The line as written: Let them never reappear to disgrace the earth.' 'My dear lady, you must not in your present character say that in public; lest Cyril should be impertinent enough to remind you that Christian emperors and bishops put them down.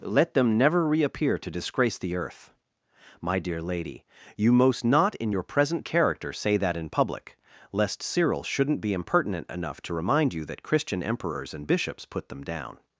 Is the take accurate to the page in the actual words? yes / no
no